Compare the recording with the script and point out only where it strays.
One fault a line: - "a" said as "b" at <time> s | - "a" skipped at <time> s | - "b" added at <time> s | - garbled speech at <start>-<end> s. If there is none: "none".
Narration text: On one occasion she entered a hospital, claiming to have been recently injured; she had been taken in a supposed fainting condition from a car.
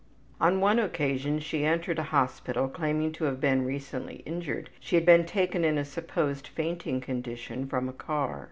none